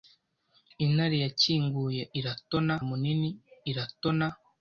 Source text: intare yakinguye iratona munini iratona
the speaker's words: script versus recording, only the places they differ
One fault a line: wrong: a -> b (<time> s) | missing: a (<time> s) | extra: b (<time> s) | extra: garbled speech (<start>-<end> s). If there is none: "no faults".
no faults